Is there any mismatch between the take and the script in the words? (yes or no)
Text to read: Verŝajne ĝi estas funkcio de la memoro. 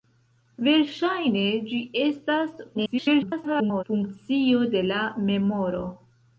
yes